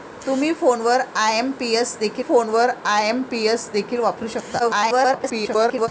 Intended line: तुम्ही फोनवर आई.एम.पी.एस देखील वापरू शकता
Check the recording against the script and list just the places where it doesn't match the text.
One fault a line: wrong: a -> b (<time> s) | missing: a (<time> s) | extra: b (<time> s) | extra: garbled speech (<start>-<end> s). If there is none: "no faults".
extra: फोनवर आई.एम.पी.एस देखील (2.2 s)
extra: garbled speech (4.6-5.9 s)